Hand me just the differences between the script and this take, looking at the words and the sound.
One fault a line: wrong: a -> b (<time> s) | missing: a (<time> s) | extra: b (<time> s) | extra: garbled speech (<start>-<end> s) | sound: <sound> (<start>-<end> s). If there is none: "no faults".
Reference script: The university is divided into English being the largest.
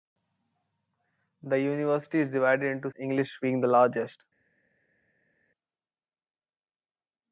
no faults